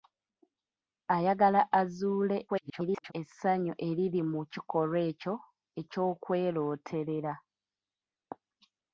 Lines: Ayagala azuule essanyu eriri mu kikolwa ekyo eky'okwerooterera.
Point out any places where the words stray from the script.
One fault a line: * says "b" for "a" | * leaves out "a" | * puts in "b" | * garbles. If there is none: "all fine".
* garbles